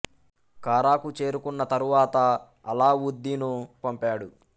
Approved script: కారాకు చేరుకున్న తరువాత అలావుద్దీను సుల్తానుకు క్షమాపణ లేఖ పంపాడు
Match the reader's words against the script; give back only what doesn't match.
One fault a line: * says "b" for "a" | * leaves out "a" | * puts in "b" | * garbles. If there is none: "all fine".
* leaves out "సుల్తానుకు క్షమాపణ లేఖ"